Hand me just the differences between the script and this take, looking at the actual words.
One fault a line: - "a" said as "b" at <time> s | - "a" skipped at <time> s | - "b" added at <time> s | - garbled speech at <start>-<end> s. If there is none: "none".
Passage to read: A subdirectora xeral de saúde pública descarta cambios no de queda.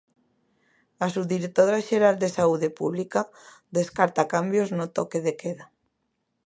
- "toque" added at 5.0 s